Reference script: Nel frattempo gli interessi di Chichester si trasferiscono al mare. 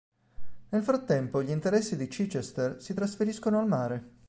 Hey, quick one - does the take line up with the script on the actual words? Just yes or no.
yes